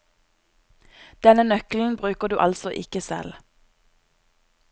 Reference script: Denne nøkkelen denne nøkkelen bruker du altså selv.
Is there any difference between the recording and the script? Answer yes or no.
yes